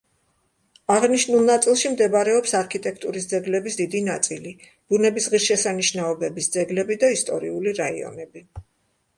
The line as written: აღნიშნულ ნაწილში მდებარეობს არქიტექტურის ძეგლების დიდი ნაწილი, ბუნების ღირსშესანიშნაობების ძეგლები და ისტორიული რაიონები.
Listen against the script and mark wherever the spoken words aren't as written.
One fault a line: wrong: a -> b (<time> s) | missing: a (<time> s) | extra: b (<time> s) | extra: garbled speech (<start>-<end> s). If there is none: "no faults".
no faults